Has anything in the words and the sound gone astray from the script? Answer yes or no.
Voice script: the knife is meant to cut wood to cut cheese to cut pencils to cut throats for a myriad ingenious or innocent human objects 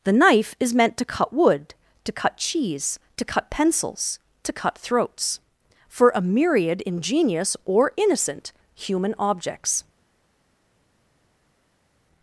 no